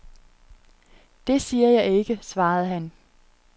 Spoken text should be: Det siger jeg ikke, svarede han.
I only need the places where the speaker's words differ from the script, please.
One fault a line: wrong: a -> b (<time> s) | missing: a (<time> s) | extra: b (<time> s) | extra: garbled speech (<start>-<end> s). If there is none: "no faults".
no faults